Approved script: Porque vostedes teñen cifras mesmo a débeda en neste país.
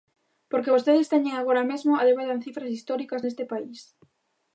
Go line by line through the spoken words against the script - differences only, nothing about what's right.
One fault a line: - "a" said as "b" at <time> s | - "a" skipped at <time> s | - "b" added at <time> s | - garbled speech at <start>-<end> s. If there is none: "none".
- "cifras" said as "agora" at 1.4 s
- "cifras históricas" added at 2.5 s